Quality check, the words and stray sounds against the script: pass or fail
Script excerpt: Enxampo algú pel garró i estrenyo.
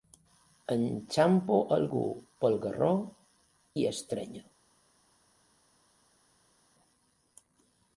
pass